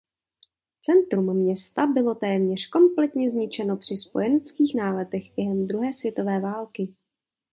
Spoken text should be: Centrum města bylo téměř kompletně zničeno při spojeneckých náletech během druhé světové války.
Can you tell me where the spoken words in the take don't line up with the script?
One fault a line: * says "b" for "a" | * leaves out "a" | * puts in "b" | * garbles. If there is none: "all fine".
all fine